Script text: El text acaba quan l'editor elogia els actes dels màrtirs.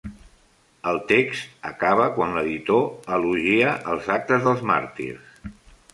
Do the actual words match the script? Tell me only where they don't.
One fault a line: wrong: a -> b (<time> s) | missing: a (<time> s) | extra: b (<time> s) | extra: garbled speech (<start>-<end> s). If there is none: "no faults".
no faults